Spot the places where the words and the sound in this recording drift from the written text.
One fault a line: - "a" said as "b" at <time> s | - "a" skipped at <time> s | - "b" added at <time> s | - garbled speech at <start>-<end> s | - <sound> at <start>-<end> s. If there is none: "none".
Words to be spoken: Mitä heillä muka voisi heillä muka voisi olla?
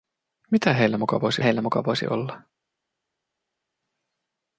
none